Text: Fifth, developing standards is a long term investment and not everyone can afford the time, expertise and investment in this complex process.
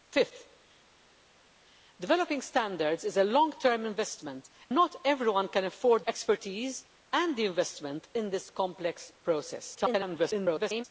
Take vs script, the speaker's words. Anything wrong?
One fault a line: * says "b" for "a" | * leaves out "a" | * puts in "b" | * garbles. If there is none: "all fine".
* leaves out "and"
* leaves out "the time"
* garbles